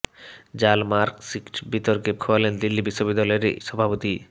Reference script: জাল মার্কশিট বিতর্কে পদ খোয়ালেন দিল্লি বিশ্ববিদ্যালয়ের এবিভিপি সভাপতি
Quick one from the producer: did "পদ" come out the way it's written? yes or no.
no